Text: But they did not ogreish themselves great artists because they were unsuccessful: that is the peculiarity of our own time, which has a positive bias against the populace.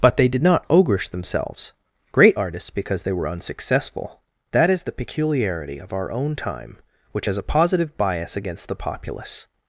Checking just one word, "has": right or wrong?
right